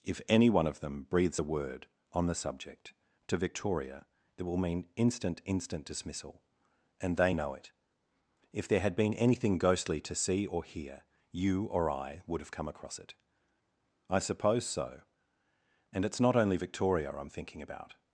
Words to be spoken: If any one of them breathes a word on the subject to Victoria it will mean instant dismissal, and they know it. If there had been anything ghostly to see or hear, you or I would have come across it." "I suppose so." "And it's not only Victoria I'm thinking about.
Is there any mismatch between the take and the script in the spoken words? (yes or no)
yes